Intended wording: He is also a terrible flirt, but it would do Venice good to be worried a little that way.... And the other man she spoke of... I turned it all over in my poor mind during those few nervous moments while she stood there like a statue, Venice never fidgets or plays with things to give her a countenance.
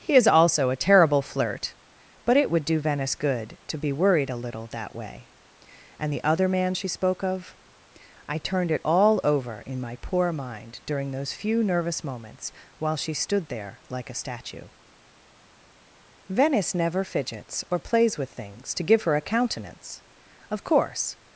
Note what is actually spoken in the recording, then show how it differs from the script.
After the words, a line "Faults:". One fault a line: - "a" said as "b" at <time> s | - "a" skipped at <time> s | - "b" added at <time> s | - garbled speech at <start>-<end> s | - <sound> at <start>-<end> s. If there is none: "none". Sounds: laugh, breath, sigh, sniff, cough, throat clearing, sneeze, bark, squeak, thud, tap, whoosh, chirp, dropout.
He is also a terrible flirt, but it would do Venice good to be worried a little that way.... And the other man she spoke of... I turned it all over in my poor mind during those few nervous moments while she stood there like a statue, Venice never fidgets or plays with things to give her a countenance. Of course
Faults:
- "Of course" added at 20.5 s